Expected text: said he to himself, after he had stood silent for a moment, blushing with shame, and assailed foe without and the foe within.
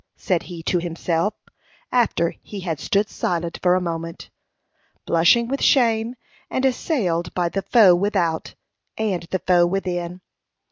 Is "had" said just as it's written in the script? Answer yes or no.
yes